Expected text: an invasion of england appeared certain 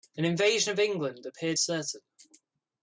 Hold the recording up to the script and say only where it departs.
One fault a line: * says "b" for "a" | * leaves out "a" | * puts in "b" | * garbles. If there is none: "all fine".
all fine